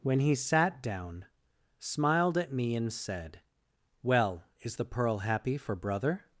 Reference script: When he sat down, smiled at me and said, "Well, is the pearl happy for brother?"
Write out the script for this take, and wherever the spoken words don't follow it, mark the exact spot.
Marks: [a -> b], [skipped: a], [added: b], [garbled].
When he sat down, smiled at me and said, "Well, is the pearl happy for brother?"